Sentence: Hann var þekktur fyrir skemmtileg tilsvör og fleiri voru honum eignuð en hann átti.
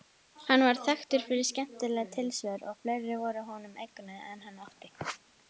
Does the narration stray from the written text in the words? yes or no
no